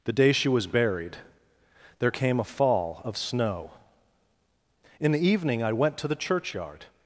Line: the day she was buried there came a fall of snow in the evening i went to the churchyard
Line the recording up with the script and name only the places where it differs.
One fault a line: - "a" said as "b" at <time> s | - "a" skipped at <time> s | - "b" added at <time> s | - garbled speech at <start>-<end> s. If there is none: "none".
none